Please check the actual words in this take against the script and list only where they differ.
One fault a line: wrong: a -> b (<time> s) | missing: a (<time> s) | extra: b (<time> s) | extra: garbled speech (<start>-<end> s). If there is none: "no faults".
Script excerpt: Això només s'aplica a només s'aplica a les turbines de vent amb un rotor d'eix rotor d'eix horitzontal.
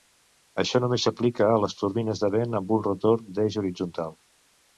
missing: només s'aplica a (1.6 s)
missing: rotor d'eix (3.6 s)